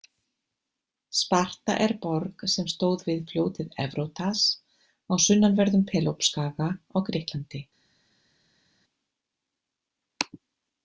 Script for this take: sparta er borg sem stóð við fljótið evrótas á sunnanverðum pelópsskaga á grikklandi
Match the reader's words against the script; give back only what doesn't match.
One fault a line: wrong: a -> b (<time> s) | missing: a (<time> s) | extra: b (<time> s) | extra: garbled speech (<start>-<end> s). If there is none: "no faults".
no faults